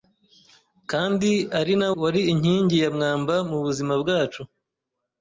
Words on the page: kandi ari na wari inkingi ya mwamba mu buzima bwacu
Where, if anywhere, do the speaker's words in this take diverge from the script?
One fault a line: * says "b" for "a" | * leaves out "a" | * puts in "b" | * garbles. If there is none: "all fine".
all fine